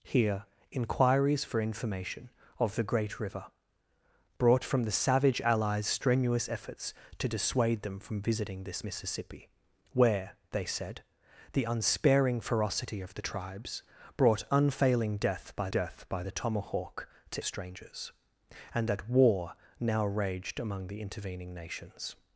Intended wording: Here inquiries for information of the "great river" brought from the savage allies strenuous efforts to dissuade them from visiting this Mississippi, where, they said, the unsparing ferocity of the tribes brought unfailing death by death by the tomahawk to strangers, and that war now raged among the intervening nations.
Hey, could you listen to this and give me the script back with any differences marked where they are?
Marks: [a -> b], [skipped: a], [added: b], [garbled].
Here inquiries for information of the "great river" brought from the savage allies strenuous efforts to dissuade them from visiting this Mississippi, where, they said, the unsparing ferocity of the tribes brought unfailing death by death by the tomahawk to strangers, and that war now raged among the intervening nations.